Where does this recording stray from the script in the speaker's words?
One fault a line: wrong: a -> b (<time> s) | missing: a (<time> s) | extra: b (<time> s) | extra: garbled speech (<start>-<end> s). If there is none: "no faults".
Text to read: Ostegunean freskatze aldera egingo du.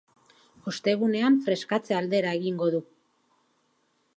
no faults